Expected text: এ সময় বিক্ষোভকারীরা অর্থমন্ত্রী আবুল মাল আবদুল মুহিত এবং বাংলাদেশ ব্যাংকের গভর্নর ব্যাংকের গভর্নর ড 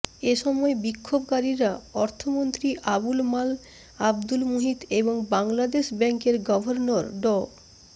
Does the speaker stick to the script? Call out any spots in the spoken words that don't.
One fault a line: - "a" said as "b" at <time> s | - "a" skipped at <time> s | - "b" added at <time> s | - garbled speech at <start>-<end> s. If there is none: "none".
- "ব্যাংকের গভর্নর" skipped at 7.0 s